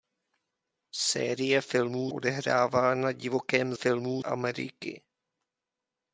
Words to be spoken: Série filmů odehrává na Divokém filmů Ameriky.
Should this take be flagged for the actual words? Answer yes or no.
no